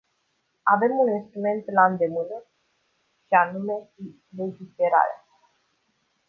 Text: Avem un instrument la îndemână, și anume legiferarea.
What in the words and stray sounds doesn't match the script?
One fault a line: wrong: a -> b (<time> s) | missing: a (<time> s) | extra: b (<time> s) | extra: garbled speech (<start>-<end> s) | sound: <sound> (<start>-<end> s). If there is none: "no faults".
no faults